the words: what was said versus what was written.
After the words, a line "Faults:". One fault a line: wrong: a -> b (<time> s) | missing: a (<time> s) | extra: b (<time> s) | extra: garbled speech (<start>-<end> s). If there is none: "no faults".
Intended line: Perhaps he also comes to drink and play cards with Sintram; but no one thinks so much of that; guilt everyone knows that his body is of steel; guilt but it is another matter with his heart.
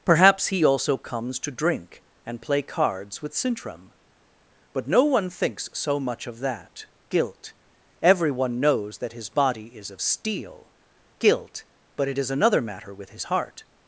Perhaps he also comes to drink and play cards with Sintram; but no one thinks so much of that; guilt everyone knows that his body is of steel; guilt but it is another matter with his heart.
Faults:
no faults